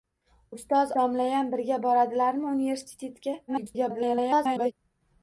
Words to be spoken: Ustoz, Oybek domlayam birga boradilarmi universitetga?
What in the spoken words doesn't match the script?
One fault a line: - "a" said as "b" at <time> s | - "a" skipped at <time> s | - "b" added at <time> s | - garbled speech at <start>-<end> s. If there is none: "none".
- "Oybek" skipped at 0.9 s
- garbled speech at 3.5-4.7 s